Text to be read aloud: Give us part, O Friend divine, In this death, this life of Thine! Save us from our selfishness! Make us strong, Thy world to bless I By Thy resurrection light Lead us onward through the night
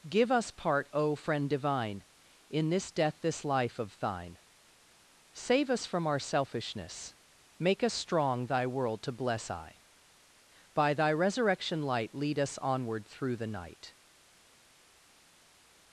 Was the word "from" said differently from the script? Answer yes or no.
no